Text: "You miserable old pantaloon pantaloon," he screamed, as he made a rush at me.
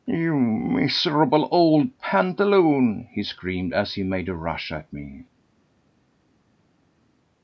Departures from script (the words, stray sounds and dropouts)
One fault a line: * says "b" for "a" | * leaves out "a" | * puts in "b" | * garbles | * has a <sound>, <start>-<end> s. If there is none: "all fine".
* leaves out "pantaloon"